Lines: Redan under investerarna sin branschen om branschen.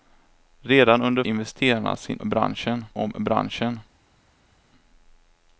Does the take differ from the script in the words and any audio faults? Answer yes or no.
no